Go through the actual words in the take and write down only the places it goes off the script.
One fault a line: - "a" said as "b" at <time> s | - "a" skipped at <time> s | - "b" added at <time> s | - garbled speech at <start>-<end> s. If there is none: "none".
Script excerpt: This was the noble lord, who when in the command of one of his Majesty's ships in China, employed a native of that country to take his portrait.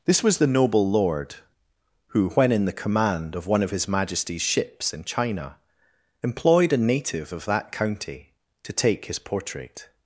- "country" said as "county" at 7.7 s